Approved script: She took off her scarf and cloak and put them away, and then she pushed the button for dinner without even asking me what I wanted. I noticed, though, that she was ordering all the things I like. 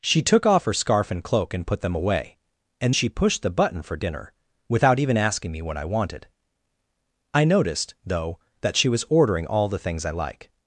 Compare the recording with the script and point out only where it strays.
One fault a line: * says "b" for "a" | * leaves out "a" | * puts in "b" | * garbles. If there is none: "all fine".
* leaves out "then"